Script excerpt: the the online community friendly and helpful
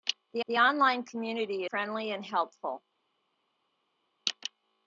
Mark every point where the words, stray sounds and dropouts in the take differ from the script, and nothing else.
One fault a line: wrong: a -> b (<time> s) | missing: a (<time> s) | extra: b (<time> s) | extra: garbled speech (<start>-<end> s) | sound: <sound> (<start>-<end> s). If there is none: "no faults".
no faults